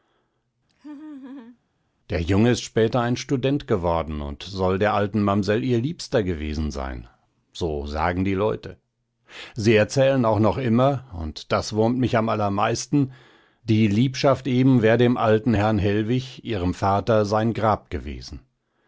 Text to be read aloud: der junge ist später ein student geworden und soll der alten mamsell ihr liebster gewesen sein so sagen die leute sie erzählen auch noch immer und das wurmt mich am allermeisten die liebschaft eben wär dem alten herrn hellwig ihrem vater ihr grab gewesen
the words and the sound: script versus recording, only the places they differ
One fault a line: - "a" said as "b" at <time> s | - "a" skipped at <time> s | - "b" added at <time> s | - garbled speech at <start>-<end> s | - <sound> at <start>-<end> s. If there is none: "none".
- laugh at 0.7-1.6 s
- "ihr" said as "sein" at 17.2 s